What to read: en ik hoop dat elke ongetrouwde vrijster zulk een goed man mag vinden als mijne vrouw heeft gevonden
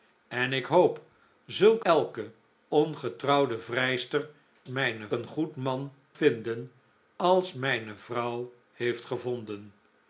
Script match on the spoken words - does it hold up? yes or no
no